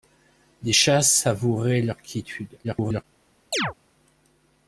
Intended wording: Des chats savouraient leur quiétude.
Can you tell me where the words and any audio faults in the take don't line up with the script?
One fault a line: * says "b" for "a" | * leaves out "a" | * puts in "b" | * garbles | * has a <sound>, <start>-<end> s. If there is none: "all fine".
* garbles
* has a chirp, 3.5-3.7 s